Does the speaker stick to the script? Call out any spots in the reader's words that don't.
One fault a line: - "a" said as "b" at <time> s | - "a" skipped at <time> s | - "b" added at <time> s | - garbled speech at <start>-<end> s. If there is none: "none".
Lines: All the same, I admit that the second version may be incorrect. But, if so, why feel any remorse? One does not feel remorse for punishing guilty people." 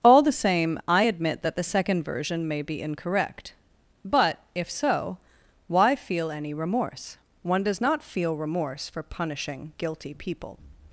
none